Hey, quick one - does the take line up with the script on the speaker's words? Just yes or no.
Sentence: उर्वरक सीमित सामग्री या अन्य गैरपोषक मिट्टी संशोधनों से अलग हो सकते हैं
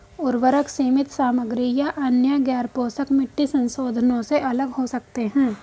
yes